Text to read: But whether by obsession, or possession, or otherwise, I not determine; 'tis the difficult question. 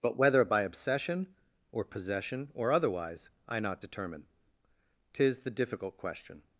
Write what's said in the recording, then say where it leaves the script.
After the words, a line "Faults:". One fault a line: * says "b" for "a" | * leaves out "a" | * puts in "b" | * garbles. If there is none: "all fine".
But whether by obsession, or possession, or otherwise, I not determine; 'tis the difficult question.
Faults:
all fine